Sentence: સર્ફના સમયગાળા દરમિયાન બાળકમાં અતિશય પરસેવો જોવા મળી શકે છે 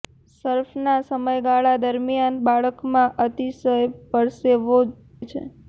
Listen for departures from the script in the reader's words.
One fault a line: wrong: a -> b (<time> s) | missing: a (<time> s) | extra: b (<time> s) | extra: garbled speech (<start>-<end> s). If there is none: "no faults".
missing: જોવા મળી શકે (4.8 s)